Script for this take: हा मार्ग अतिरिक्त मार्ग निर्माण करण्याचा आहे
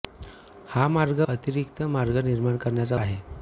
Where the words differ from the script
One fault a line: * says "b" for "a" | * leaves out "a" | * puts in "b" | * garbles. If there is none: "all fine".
all fine